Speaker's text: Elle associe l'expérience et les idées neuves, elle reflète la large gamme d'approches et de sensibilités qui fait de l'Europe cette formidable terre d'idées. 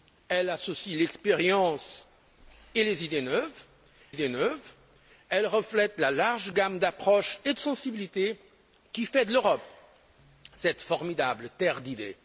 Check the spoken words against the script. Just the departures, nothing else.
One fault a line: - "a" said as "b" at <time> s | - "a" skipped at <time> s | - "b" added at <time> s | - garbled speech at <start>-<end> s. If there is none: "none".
- "idées neuves" added at 4.1 s